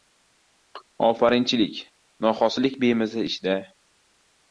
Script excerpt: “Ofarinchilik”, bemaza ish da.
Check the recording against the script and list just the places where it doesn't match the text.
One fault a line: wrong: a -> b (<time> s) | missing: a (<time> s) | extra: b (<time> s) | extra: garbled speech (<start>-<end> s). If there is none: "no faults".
extra: noxolislik (2.3 s)